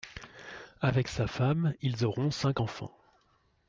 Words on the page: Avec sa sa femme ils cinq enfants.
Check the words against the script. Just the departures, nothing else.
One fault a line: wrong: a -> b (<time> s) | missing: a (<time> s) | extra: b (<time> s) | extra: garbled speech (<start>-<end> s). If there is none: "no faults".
missing: sa (1.3 s)
extra: auront (2.1 s)